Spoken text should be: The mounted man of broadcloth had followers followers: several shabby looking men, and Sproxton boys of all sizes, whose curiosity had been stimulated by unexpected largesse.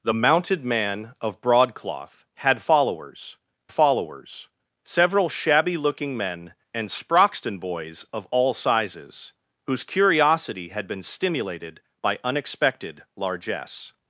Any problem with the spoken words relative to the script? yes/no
no